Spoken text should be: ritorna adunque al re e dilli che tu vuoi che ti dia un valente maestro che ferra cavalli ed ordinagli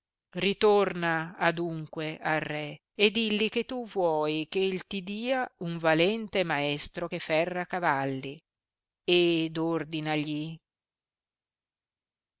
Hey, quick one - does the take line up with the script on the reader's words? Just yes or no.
yes